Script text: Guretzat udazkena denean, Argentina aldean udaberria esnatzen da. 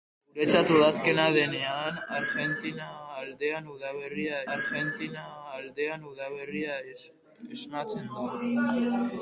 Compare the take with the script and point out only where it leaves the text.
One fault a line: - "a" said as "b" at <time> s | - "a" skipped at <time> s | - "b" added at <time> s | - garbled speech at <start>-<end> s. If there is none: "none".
- "Argentina aldean udaberria" added at 4.6 s